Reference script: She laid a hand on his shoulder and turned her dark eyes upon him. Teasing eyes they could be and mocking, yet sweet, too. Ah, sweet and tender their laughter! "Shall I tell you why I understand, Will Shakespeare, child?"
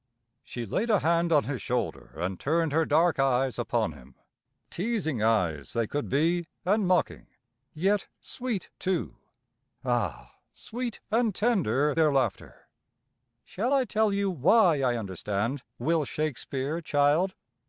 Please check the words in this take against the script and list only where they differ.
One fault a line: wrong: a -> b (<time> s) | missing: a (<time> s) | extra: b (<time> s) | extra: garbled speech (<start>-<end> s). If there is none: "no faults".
no faults